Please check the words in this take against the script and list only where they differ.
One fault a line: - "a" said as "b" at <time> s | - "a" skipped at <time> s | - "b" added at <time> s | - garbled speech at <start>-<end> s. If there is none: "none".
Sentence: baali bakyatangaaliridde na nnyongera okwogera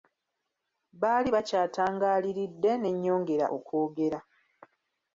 - "na" said as "ne" at 2.8 s